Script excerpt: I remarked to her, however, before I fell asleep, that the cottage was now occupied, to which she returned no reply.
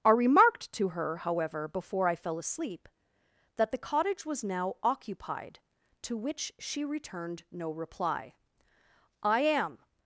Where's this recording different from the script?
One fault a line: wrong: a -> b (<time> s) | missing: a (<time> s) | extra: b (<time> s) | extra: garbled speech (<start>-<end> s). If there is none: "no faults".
extra: I am (9.2 s)